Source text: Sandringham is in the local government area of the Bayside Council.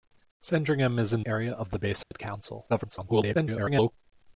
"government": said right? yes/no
no